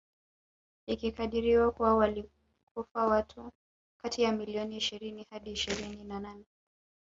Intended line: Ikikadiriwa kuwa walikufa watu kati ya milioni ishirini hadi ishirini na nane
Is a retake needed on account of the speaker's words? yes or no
no